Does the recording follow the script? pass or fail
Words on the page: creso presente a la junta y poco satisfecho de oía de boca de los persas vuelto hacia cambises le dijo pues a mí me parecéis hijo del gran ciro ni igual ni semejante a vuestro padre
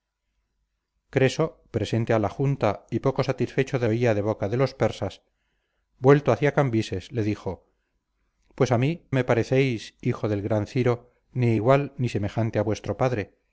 pass